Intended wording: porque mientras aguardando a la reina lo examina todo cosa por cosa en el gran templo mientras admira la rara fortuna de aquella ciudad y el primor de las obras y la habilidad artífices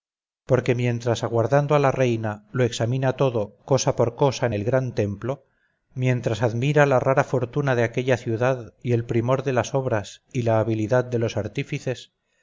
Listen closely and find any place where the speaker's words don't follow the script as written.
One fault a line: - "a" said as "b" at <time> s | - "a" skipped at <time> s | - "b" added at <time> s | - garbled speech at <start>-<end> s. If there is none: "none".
- "de los" added at 11.0 s